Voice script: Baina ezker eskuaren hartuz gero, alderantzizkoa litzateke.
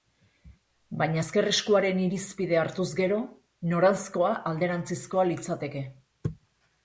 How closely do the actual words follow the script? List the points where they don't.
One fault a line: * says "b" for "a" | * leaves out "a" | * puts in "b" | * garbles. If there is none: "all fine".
* puts in "irizpidea"
* puts in "noranzkoa"